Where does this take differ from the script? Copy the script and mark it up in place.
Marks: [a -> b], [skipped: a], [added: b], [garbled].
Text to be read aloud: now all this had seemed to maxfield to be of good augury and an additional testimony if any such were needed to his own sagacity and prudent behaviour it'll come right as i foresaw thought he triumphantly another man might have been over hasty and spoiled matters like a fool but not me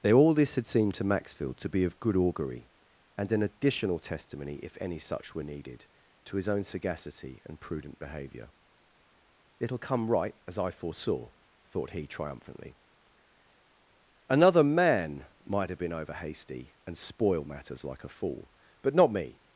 now all this had seemed to maxfield to be of good augury and an additional testimony if any such were needed to his own sagacity and prudent behaviour it'll come right as i foresaw thought he triumphantly another man might have been over hasty and spoiled matters like a fool but not me